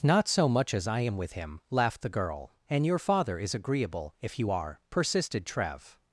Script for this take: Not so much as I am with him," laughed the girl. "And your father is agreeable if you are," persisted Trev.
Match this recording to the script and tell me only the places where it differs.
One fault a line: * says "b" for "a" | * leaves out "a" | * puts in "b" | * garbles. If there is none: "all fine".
all fine